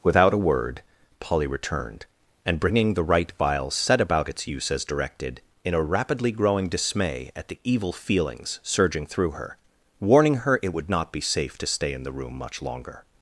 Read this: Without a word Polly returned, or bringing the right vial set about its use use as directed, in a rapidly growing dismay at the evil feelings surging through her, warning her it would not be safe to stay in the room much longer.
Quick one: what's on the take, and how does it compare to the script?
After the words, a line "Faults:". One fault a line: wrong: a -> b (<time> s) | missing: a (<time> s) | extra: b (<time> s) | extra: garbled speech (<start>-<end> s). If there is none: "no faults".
Without a word Polly returned, and bringing the right vial set about its use as directed, in a rapidly growing dismay at the evil feelings surging through her, warning her it would not be safe to stay in the room much longer.
Faults:
wrong: or -> and (2.5 s)
missing: use (4.7 s)